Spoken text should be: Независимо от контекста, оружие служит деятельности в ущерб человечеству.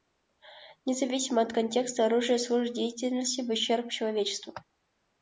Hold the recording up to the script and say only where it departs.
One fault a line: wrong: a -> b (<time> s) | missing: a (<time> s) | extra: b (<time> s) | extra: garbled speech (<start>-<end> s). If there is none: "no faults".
no faults